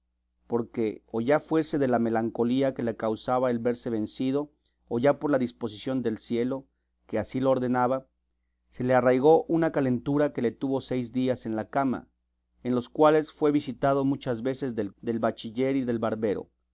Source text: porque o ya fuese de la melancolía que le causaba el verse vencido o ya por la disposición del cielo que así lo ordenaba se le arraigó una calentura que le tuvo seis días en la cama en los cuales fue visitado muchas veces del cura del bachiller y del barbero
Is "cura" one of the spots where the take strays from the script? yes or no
yes